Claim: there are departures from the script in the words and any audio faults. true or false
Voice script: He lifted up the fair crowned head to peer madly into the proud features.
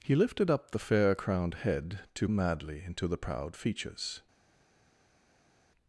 true